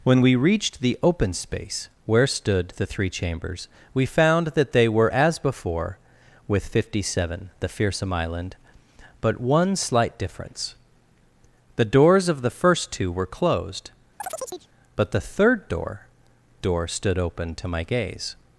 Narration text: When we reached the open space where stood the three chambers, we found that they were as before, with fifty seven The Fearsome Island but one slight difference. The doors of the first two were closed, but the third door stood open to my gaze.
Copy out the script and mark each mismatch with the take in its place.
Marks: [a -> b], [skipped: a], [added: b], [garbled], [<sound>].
When we reached the open space where stood the three chambers, we found that they were as before, with fifty seven The Fearsome Island but one slight difference. The doors of the first two were closed, [chirp] but the third door [added: door] stood open to my gaze.